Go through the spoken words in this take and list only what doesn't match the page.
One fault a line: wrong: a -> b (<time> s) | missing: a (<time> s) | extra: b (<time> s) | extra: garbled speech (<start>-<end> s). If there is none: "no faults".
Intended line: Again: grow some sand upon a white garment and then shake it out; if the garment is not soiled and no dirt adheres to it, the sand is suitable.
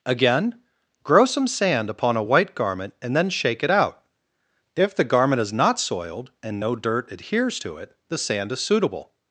no faults